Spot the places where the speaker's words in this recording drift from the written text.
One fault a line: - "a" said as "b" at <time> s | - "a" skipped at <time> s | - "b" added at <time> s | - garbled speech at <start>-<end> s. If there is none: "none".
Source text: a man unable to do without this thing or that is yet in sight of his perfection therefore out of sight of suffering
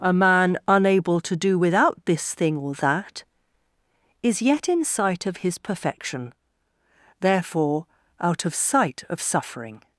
none